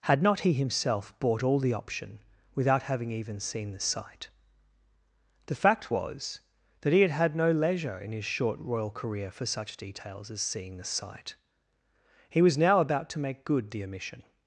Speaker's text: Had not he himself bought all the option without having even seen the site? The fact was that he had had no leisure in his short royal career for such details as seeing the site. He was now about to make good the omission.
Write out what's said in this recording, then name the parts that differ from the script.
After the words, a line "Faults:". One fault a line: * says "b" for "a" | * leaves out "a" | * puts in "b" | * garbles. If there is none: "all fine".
Had not he himself bought all the option without having even seen the site? The fact was that he had had no leisure in his short royal career for such details as seeing the site. He was now about to make good the omission.
Faults:
all fine